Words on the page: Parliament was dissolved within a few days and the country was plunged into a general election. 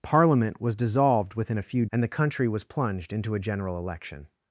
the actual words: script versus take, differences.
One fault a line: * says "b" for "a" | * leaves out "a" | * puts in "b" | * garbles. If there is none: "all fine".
* leaves out "days"